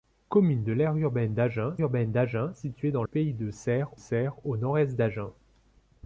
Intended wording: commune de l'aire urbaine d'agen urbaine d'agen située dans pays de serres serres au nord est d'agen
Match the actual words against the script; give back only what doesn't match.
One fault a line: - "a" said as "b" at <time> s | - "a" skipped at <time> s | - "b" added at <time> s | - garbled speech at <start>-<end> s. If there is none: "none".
none